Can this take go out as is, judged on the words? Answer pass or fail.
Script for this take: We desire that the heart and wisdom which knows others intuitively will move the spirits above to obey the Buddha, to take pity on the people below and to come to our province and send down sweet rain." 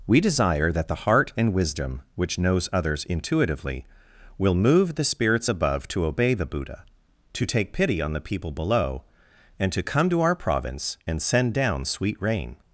pass